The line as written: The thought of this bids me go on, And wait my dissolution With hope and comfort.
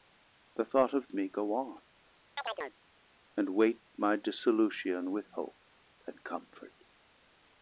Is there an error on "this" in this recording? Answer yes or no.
yes